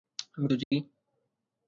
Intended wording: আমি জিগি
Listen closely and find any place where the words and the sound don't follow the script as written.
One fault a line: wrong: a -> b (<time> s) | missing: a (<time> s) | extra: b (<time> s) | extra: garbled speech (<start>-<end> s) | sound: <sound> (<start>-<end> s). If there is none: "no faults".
sound: dropout (0.6-0.7 s)